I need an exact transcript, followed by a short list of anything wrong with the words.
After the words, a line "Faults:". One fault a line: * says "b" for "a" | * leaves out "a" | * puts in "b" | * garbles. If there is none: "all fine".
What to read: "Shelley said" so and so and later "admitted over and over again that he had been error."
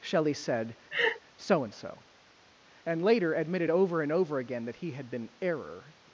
"Shelley said" so and so and later "admitted over and over again that he had been error."
Faults:
all fine